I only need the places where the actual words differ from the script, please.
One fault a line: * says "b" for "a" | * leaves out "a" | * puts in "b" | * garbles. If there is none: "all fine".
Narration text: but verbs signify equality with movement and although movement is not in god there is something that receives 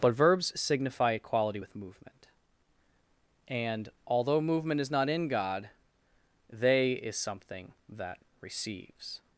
* says "they" for "there"